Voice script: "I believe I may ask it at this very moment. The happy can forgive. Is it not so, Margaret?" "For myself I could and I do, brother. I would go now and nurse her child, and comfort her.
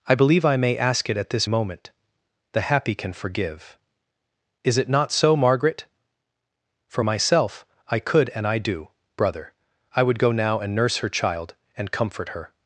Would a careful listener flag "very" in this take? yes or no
yes